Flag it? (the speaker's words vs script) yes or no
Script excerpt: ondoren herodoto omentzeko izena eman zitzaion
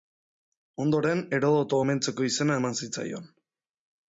no